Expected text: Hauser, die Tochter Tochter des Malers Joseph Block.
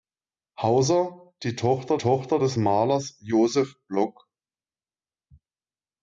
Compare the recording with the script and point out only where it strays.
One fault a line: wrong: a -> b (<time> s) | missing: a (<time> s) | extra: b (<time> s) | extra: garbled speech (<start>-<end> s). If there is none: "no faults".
no faults